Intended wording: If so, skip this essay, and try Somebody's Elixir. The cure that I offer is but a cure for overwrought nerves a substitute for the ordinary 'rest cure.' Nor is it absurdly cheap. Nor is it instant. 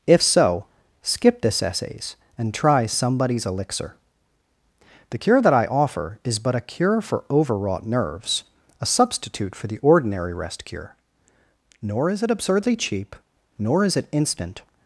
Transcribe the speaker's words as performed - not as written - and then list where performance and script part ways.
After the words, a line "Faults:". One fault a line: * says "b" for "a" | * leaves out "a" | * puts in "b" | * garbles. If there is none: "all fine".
If so, skip this essays, and try Somebody's Elixir. The cure that I offer is but a cure for overwrought nerves a substitute for the ordinary 'rest cure.' Nor is it absurdly cheap. Nor is it instant.
Faults:
* says "essays" for "essay"